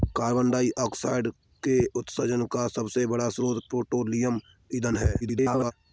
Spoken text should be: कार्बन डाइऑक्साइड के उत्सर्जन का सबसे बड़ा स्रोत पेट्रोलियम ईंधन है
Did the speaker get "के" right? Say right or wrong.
right